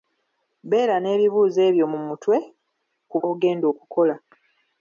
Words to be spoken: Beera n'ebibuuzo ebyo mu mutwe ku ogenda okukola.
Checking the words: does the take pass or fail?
pass